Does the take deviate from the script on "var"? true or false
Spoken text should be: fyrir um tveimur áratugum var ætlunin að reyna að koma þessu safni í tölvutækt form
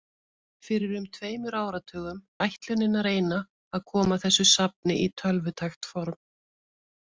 true